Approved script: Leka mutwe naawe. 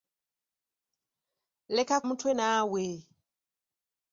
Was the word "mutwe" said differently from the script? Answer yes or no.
no